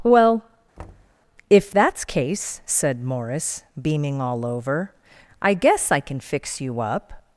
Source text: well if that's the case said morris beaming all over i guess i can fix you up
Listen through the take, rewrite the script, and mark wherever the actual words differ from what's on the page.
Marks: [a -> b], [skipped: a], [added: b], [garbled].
well if that's [skipped: the] case said morris beaming all over i guess i can fix you up